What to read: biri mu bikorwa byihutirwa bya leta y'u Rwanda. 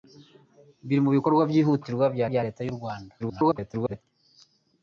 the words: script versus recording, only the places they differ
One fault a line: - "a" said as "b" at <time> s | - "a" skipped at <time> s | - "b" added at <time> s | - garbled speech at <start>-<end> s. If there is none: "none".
- "bya" added at 2.3 s
- garbled speech at 3.2-4.0 s